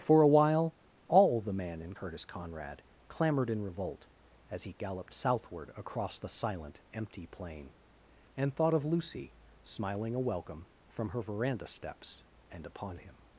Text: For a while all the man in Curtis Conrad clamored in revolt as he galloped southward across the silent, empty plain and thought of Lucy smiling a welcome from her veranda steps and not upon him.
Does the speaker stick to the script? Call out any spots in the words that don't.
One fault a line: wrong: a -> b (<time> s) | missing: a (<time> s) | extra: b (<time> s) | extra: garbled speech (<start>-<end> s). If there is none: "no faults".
missing: not (12.7 s)